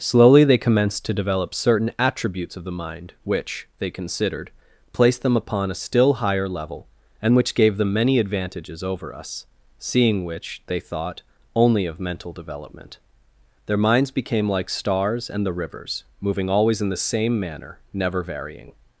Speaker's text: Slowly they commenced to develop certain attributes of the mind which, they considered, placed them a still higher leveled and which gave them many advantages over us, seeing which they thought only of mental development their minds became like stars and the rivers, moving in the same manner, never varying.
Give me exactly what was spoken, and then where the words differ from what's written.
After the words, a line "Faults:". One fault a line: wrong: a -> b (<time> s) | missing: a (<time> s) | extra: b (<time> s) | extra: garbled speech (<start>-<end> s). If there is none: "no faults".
Slowly they commenced to develop certain attributes of the mind which, they considered, placed them upon a still higher level and which gave them many advantages over us, seeing which they thought only of mental development their minds became like stars and the rivers, moving always in the same manner, never varying.
Faults:
extra: upon (5.4 s)
wrong: leveled -> level (6.5 s)
extra: always (16.5 s)